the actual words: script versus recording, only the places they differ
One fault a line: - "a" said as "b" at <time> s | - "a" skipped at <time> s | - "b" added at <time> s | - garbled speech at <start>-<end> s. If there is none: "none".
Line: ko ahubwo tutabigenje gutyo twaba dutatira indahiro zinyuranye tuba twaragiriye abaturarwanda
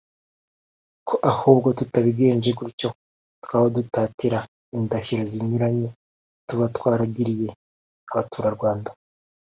none